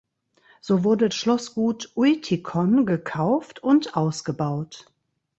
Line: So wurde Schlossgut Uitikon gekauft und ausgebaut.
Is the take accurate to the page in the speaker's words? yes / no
yes